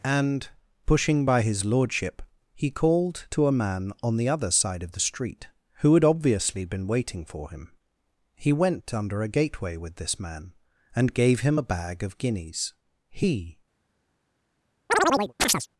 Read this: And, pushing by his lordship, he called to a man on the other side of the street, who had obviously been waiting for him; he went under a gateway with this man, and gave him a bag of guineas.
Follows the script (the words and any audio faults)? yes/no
no